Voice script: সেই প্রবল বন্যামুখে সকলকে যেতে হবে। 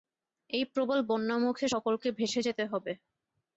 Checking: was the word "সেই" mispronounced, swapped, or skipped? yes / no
yes